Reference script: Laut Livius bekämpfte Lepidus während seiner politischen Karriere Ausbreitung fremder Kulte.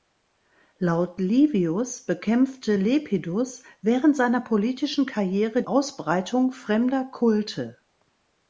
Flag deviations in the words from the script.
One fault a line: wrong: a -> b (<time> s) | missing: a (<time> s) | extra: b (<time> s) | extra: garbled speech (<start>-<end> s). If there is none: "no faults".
no faults